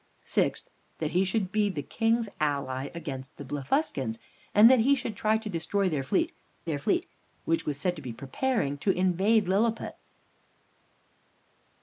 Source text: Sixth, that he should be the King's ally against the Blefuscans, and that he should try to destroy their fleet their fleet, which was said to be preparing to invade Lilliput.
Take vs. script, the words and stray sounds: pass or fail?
pass